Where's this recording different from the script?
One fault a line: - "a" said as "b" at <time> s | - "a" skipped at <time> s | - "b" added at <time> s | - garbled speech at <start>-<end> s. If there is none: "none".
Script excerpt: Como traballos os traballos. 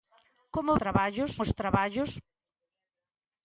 none